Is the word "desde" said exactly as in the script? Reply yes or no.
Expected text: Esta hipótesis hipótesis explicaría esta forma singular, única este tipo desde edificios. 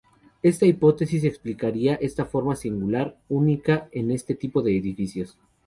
no